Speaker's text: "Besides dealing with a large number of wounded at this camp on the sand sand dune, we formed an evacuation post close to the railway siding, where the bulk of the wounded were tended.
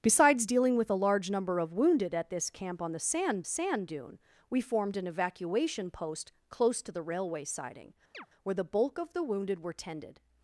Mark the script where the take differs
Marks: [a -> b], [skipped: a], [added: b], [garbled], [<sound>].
"Besides dealing with a large number of wounded at this camp on the sand sand dune, we formed an evacuation post close to the railway siding, [chirp] where the bulk of the wounded were tended.